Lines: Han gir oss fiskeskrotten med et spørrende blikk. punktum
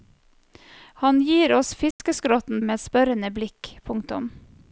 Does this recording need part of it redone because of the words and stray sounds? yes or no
yes